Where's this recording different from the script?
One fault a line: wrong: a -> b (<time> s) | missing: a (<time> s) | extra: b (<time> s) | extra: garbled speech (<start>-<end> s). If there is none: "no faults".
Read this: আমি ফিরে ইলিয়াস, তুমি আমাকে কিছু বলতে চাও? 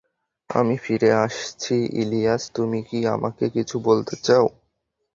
extra: আসছি (1.2 s)
extra: কি (2.8 s)